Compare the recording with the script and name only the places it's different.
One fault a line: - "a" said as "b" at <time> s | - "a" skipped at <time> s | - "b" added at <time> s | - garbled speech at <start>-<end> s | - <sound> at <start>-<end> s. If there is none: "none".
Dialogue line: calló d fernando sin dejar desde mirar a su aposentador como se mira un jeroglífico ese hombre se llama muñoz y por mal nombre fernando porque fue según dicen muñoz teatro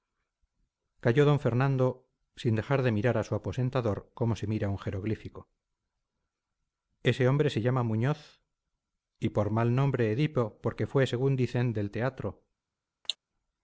- "desde" said as "de" at 2.8 s
- "fernando" said as "edipo" at 10.1 s
- "muñoz" said as "del" at 11.7 s
- cough at 13.0-13.2 s